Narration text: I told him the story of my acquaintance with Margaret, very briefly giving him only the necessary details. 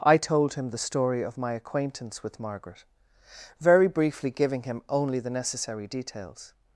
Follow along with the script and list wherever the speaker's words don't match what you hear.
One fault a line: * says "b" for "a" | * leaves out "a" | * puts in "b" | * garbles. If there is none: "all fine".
all fine